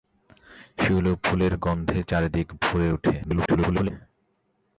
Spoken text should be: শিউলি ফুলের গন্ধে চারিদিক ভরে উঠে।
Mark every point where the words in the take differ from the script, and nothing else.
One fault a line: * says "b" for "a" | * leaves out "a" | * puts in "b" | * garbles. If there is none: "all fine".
* garbles